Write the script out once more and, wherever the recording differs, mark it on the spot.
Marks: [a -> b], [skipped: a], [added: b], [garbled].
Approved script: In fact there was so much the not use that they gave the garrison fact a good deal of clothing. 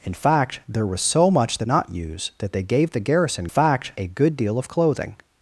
In fact there was so much the not use that they gave the garrison fact a good deal of clothing.